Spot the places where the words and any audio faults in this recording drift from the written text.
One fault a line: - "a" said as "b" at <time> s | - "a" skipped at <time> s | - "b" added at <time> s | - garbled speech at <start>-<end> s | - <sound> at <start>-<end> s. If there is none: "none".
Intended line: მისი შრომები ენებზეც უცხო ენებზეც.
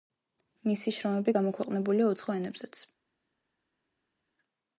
- "ენებზეც" said as "გამოქვეყნებულია" at 1.4 s